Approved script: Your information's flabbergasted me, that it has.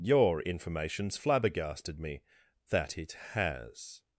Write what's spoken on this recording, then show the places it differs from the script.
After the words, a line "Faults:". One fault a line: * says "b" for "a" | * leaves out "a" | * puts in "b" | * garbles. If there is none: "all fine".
Your information's flabbergasted me, that it has.
Faults:
all fine